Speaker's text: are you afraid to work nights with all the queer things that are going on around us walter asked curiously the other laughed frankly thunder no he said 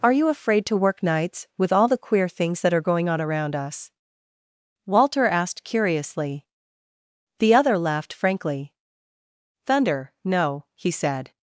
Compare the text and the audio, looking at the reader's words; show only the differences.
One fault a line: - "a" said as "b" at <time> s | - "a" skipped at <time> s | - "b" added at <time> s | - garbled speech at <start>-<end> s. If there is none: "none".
none